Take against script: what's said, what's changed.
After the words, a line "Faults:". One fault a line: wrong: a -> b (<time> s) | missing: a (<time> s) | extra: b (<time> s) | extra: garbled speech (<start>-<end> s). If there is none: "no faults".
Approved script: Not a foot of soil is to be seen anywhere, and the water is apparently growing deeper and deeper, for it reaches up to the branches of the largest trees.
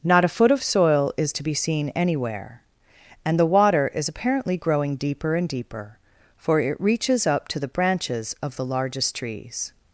Not a foot of soil is to be seen anywhere, and the water is apparently growing deeper and deeper, for it reaches up to the branches of the largest trees.
Faults:
no faults